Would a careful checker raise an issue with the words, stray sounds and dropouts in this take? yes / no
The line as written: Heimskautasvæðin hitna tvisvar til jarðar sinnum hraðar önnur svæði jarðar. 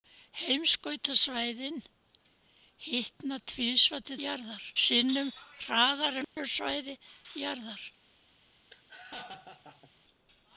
yes